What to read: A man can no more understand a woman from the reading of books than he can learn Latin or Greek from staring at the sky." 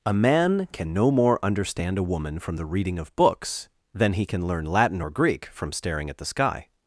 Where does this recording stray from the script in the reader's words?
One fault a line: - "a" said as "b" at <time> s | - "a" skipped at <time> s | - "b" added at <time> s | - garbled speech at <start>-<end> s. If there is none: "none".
none